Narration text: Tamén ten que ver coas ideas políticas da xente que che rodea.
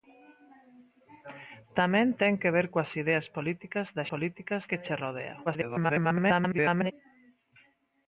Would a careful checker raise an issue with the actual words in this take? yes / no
yes